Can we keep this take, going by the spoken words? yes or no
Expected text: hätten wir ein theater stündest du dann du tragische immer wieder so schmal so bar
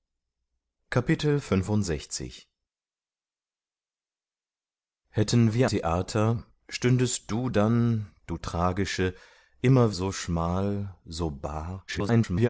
no